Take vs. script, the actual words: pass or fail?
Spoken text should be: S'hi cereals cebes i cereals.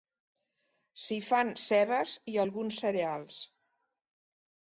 fail